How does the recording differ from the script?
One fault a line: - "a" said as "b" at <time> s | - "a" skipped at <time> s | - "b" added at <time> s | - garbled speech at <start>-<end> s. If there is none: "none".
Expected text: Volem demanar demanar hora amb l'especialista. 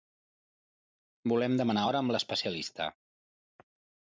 - "demanar" skipped at 1.8 s